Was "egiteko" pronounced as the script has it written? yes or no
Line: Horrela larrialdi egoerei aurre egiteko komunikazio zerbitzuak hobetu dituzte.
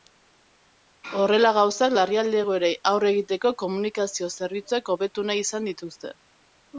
yes